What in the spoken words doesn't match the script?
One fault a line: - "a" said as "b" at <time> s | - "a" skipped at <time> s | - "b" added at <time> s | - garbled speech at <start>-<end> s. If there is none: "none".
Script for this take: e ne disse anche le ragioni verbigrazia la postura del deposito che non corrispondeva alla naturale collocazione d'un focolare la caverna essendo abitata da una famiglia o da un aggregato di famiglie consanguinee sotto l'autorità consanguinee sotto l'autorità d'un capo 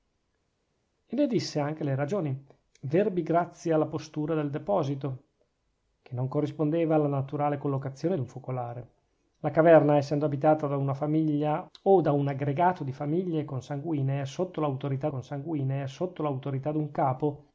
none